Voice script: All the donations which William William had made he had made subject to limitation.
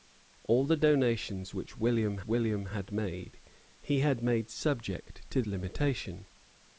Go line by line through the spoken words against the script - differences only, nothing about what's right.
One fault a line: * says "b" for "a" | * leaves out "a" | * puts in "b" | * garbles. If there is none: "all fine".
all fine